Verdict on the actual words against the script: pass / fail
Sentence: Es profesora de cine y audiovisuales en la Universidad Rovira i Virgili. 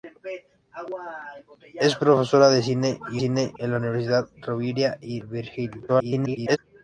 fail